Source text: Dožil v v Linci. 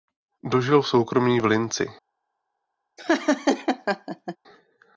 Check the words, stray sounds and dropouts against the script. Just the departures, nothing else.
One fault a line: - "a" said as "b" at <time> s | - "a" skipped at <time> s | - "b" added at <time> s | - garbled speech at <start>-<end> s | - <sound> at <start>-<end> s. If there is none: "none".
- "soukromí" added at 0.9 s
- laugh at 3.0-4.4 s